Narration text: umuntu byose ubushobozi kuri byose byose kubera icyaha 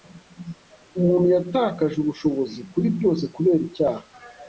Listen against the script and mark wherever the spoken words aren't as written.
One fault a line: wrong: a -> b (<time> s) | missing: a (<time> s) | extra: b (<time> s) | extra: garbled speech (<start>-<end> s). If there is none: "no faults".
wrong: byose -> yatakaje (1.4 s)
missing: byose (3.2 s)